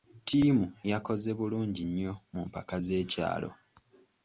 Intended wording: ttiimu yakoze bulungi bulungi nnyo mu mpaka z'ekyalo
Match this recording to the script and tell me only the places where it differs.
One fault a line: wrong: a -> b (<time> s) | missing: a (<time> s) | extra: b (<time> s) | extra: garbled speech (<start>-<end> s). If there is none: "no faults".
missing: bulungi (1.8 s)